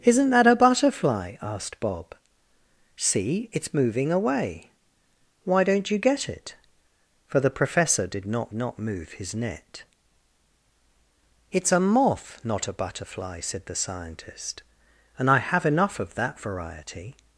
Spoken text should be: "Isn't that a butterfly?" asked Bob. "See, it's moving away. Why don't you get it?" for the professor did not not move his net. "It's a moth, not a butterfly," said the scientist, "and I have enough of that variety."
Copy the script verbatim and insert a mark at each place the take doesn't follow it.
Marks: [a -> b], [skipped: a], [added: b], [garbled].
"Isn't that a butterfly?" asked Bob. "See, it's moving away. Why don't you get it?" for the professor did not not move his net. "It's a moth, not a butterfly," said the scientist, "and I have enough of that variety."